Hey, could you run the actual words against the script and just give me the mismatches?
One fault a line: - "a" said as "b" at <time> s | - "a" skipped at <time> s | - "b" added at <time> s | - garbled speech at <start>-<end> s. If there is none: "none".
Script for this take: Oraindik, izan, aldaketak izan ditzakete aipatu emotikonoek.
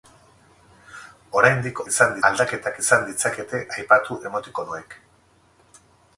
none